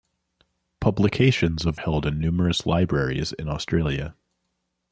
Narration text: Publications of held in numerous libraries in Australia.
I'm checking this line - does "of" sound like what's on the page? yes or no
yes